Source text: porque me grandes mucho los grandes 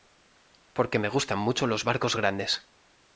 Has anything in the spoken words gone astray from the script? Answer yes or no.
yes